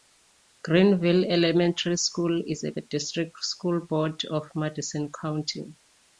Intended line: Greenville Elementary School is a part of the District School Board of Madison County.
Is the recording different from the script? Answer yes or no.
yes